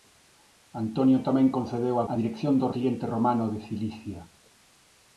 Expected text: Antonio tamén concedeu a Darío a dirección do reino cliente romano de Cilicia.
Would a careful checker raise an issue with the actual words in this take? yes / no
yes